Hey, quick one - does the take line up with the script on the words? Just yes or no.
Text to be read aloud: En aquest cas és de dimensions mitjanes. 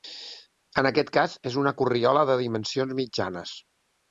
no